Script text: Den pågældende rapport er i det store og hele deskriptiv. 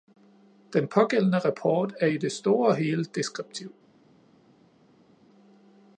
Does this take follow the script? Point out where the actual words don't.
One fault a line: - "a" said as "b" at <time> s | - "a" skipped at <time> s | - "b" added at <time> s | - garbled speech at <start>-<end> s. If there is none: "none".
none